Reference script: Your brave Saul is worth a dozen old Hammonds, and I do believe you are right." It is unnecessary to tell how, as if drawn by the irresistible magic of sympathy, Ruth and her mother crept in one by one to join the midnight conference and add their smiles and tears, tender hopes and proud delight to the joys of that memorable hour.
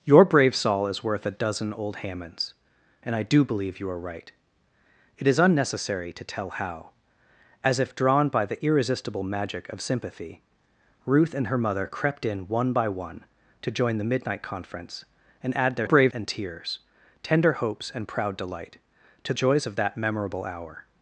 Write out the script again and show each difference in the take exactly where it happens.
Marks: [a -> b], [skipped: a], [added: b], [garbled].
Your brave Saul is worth a dozen old Hammonds, and I do believe you are right." It is unnecessary to tell how, as if drawn by the irresistible magic of sympathy, Ruth and her mother crept in one by one to join the midnight conference and add their [smiles -> brave] and tears, tender hopes and proud delight to [skipped: the] joys of that memorable hour.